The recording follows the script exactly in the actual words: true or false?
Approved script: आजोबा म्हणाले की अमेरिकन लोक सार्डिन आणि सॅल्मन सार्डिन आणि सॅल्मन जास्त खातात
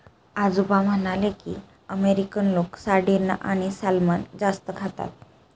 false